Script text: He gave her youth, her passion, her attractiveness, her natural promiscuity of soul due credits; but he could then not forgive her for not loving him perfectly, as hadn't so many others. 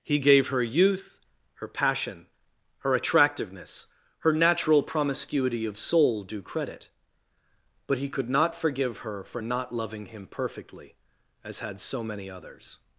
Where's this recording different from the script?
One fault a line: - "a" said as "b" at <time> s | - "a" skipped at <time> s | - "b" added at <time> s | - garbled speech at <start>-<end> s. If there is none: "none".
- "credits" said as "credit" at 6.4 s
- "then" skipped at 8.3 s
- "hadn't" said as "had" at 11.6 s